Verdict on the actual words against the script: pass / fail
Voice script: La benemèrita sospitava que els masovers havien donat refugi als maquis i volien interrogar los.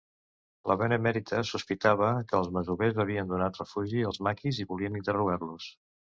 pass